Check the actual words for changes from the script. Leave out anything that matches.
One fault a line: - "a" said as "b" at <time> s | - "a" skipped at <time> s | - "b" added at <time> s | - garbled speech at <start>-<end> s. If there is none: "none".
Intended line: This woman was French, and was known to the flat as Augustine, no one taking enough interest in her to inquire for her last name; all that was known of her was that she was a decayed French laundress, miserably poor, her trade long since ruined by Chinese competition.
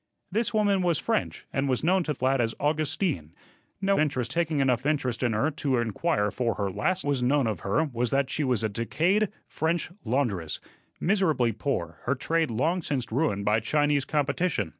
- "the" skipped at 2.1 s
- "one" said as "interest" at 4.0 s
- "name all that" skipped at 7.0 s